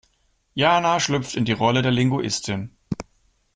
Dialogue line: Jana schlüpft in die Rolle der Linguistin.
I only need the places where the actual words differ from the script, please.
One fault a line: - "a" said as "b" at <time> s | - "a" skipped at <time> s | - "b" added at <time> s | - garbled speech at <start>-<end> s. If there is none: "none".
none